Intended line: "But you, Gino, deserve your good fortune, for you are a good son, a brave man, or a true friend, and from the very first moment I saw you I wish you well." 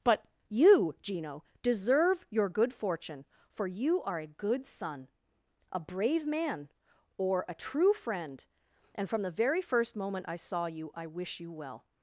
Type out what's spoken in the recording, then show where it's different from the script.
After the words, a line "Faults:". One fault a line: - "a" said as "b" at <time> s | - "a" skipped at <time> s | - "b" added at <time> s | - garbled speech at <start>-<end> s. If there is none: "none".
"But you, Gino, deserve your good fortune, for you are a good son, a brave man, or a true friend, and from the very first moment I saw you I wish you well."
Faults:
none